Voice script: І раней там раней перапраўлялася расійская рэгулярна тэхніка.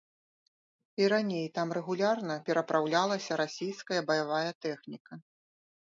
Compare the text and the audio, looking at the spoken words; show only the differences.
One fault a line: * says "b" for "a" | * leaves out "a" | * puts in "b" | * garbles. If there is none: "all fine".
* says "рэгулярна" for "раней"
* says "баявая" for "рэгулярна"